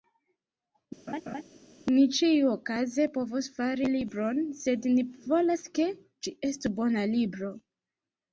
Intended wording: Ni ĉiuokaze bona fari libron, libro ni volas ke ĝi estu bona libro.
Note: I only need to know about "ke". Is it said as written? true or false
true